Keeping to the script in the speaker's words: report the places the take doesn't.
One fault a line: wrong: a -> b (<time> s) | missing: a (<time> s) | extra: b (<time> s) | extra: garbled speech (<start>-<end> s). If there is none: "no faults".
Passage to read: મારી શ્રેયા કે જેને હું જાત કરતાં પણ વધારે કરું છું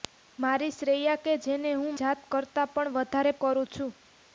no faults